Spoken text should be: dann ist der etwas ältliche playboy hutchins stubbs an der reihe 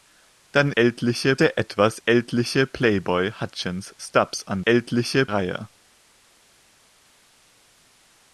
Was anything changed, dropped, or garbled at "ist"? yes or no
yes